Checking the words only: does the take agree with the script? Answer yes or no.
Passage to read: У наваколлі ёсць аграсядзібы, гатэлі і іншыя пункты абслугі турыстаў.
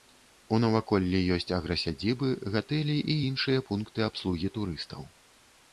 yes